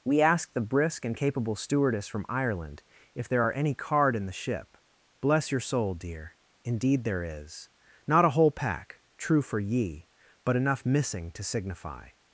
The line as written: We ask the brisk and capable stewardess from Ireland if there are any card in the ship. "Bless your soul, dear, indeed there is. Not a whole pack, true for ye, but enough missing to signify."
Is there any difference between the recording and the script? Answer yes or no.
no